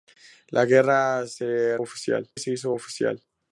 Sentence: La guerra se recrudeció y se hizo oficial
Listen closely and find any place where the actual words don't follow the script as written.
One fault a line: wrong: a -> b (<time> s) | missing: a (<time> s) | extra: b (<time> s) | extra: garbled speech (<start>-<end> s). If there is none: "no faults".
wrong: recrudeció -> oficial (1.8 s)